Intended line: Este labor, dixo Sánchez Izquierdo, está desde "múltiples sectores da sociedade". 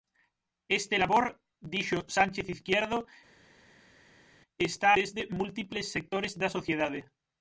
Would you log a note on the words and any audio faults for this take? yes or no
no